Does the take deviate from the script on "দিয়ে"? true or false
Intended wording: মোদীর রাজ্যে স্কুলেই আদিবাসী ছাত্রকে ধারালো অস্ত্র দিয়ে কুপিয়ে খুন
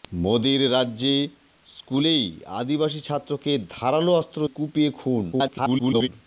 true